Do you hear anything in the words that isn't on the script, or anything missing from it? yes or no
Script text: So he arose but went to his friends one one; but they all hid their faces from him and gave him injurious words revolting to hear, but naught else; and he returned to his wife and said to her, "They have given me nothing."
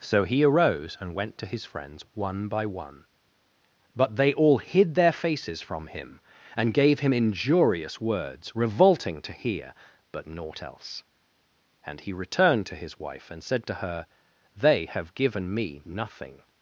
yes